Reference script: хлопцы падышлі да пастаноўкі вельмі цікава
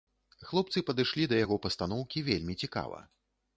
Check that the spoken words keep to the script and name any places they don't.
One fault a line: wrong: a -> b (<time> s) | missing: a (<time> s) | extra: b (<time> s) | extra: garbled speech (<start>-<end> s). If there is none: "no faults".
extra: яго (1.4 s)